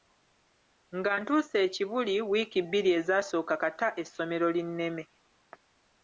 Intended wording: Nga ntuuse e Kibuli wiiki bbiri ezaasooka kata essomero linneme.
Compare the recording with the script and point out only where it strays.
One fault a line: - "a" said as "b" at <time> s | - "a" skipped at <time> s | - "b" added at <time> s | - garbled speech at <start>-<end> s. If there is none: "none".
none